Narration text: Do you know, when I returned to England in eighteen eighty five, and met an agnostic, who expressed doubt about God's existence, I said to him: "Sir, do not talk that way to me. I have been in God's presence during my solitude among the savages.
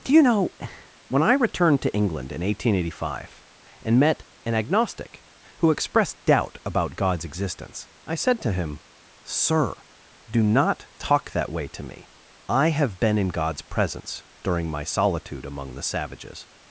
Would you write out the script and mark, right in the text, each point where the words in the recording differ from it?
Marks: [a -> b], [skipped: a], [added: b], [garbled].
Do you know, when I returned to England in eighteen eighty five, and met an agnostic, who expressed doubt about God's existence, I said to him: "Sir, do not talk that way to me. I have been in God's presence during my solitude among the savages.